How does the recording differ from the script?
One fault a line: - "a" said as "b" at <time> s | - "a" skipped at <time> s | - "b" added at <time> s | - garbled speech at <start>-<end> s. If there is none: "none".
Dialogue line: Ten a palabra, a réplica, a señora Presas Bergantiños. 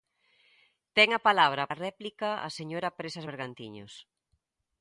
none